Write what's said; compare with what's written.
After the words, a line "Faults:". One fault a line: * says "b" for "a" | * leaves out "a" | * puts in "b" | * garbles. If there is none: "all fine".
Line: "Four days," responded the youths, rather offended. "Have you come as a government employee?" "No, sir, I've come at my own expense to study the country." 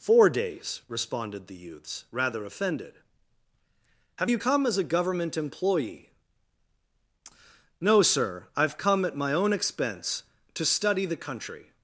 "Four days," responded the youths, rather offended. "Have you come as a government employee?" "No, sir, I've come at my own expense to study the country."
Faults:
all fine